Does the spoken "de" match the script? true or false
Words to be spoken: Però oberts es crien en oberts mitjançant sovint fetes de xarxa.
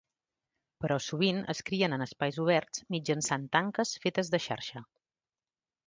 true